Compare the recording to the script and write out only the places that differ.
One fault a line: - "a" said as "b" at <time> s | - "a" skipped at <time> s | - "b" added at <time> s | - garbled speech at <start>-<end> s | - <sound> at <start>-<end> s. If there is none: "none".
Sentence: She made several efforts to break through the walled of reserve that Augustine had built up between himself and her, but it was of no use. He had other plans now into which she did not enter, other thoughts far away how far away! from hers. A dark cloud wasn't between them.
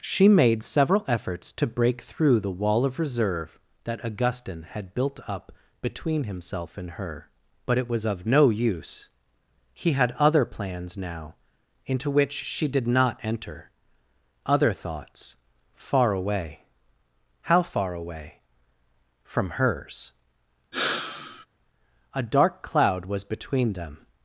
- "walled" said as "wall" at 2.5 s
- sigh at 20.7-21.5 s
- "wasn't" said as "was" at 23.1 s